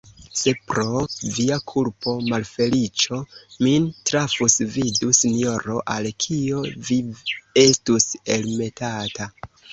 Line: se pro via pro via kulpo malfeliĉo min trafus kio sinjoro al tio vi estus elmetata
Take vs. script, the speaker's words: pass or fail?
fail